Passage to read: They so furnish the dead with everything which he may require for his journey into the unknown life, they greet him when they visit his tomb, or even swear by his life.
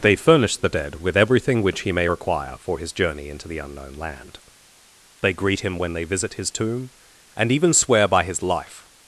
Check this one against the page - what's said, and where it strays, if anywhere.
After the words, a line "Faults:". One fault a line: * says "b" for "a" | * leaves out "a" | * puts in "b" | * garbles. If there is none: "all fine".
They furnish the dead with everything which he may require for his journey into the unknown land, they greet him when they visit his tomb, and even swear by his life.
Faults:
* leaves out "so"
* says "land" for "life"
* says "and" for "or"